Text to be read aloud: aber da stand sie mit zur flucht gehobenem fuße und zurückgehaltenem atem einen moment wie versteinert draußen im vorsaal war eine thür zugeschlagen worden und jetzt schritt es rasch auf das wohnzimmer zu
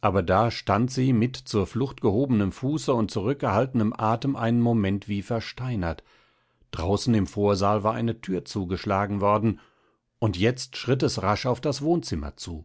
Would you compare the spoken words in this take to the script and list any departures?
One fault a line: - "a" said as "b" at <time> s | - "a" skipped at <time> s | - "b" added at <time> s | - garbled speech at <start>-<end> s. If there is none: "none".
none